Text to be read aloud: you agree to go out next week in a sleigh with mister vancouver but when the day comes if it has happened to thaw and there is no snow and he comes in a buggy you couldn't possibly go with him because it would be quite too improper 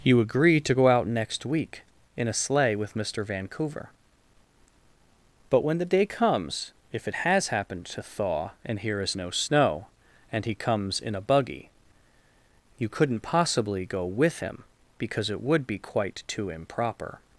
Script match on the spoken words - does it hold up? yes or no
no